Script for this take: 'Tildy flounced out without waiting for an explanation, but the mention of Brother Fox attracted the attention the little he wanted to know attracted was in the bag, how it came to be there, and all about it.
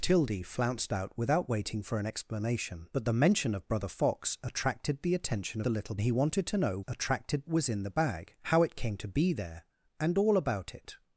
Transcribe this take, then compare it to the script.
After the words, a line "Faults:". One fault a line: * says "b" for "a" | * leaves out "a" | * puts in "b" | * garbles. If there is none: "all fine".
'Tildy flounced out without waiting for an explanation, but the mention of Brother Fox attracted the attention the little he wanted to know attracted was in the bag, how it came to be there, and all about it.
Faults:
all fine